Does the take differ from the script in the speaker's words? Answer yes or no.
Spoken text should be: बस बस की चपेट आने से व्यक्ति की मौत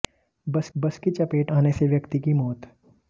no